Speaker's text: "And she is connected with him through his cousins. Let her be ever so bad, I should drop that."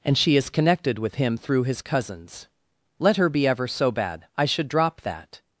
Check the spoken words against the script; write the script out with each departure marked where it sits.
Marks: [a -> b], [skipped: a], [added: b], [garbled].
"And she is connected with him through his cousins. Let her be ever so bad, I should drop that."